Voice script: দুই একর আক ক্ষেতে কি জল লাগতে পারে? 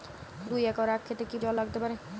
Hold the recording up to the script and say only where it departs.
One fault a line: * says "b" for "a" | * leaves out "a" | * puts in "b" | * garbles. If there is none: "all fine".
all fine